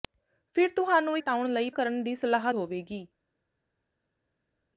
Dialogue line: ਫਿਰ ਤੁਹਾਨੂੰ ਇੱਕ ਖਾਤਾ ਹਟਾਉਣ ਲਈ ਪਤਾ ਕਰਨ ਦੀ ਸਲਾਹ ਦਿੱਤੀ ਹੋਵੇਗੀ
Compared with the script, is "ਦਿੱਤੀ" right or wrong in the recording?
wrong